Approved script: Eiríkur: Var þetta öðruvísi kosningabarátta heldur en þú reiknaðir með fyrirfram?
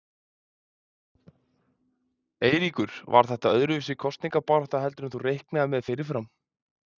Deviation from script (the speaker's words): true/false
false